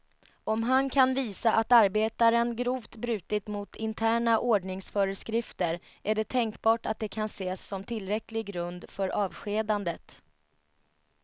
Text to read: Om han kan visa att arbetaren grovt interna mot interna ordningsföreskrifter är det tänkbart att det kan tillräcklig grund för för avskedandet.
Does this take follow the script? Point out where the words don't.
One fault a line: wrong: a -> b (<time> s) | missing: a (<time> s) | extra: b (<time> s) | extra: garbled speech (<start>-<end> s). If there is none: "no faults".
wrong: interna -> brutit (3.0 s)
extra: ses som (7.2 s)
missing: för (9.1 s)